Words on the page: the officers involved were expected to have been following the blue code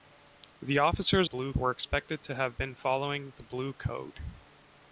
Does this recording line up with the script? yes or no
no